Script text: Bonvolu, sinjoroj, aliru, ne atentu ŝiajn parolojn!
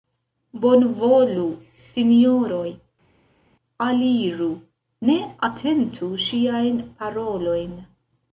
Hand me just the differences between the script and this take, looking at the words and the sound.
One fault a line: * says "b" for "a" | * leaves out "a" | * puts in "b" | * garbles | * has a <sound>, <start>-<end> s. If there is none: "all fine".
all fine